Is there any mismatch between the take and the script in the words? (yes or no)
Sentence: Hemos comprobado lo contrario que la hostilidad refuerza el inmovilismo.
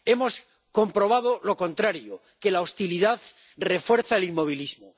no